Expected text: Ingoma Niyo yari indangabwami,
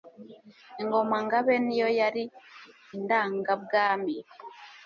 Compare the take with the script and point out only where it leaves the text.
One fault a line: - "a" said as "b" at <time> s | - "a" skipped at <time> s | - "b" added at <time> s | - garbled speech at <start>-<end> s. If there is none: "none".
- "Ngabe" added at 1.2 s